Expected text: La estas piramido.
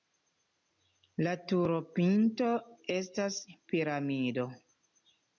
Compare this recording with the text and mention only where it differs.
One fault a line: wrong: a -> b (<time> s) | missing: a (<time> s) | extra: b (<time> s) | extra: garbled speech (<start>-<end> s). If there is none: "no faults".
extra: turopinto (1.5 s)